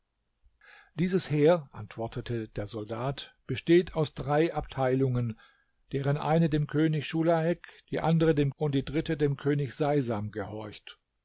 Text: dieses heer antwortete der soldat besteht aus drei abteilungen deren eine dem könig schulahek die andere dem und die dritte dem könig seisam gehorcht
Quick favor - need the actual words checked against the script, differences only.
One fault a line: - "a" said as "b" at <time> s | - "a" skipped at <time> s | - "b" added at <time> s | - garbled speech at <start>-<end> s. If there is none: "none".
none